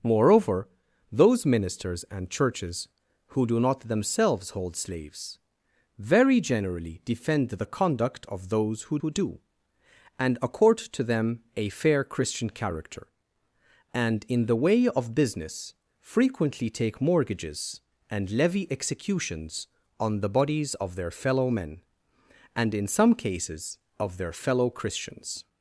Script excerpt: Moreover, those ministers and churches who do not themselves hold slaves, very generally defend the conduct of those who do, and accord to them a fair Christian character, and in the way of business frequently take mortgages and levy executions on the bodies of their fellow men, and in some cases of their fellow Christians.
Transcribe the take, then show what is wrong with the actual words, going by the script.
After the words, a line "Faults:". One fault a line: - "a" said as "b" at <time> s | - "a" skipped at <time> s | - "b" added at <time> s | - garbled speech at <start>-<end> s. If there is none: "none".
Moreover, those ministers and churches who do not themselves hold slaves, very generally defend the conduct of those who who do, and accord to them a fair Christian character, and in the way of business frequently take mortgages and levy executions on the bodies of their fellow men, and in some cases of their fellow Christians.
Faults:
- "who" added at 9.0 s